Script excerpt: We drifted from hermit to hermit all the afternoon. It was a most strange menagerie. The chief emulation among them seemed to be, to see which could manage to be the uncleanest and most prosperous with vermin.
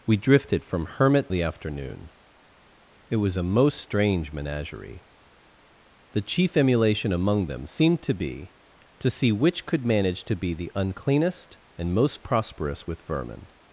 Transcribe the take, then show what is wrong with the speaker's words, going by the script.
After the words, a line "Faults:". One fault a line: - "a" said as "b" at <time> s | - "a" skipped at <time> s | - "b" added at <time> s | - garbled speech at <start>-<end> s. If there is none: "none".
We drifted from hermit the afternoon. It was a most strange menagerie. The chief emulation among them seemed to be, to see which could manage to be the uncleanest and most prosperous with vermin.
Faults:
- "to hermit all" skipped at 1.3 s